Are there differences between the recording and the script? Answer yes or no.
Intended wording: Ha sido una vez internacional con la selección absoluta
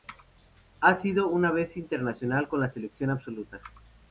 no